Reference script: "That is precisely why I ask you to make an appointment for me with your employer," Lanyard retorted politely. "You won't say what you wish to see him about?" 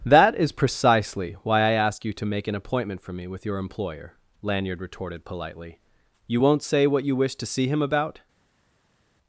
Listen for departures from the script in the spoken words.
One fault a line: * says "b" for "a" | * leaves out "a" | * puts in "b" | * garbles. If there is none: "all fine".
all fine